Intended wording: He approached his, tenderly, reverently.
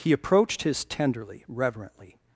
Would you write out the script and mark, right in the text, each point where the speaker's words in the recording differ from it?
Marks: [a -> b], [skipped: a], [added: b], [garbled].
He approached his, tenderly, reverently.